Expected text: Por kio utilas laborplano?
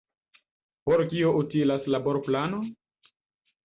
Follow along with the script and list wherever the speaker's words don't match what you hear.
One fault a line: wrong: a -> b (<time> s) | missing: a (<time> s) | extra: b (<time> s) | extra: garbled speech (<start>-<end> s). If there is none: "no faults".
no faults